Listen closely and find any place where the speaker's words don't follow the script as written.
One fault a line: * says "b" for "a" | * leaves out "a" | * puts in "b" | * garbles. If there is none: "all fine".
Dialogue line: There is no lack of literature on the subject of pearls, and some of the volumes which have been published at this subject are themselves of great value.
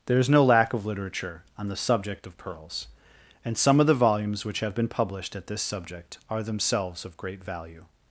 all fine